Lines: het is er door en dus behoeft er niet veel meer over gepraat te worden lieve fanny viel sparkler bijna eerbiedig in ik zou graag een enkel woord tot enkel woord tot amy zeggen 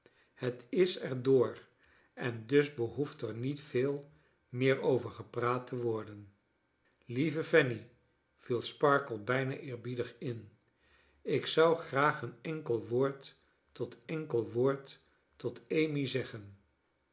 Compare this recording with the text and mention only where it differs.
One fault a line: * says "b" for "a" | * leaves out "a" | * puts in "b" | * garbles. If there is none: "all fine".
all fine